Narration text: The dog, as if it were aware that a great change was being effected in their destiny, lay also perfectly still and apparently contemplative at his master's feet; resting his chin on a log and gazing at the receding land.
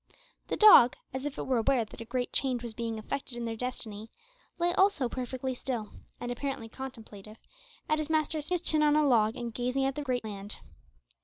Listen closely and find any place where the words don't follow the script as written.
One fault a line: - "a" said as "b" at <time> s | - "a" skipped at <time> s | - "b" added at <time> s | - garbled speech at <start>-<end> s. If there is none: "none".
- "feet resting" skipped at 8.5 s
- "receding" said as "great" at 10.0 s